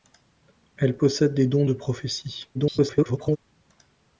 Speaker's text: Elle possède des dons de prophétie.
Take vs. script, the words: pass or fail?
fail